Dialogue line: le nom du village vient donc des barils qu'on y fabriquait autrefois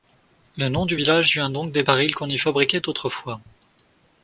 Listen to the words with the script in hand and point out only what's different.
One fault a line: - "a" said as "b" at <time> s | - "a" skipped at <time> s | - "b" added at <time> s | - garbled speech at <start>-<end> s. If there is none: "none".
none